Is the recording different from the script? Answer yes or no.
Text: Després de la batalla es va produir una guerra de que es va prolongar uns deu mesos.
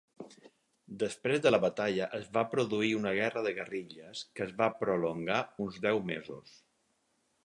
yes